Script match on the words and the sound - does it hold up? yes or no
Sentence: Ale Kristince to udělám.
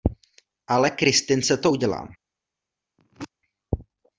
no